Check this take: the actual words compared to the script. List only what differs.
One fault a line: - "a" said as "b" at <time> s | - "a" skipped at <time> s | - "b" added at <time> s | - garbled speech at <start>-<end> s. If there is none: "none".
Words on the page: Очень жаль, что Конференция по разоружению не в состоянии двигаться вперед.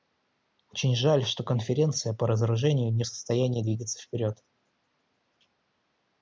none